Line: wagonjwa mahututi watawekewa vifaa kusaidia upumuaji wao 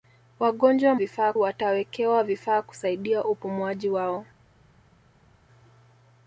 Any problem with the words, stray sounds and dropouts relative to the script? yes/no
yes